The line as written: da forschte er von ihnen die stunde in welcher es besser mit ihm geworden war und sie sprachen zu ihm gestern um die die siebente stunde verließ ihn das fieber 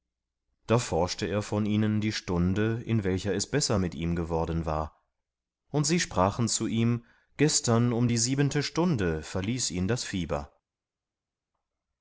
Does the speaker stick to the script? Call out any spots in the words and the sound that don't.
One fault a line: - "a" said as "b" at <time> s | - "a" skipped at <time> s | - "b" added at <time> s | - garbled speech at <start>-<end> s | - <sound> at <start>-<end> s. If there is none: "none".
- "die" skipped at 8.2 s